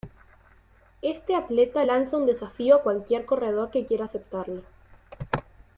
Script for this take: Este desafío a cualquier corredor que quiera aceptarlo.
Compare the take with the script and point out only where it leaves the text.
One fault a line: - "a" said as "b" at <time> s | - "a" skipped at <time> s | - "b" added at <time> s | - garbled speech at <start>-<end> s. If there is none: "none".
- "atleta lanza un" added at 1.4 s